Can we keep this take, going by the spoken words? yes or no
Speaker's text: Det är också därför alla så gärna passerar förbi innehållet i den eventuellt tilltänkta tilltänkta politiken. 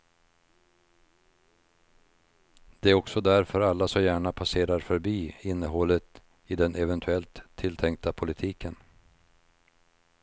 no